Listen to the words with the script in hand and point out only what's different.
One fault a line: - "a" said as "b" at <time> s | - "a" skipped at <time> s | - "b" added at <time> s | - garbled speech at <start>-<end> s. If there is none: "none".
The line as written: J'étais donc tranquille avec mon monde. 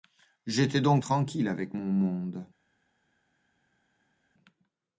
none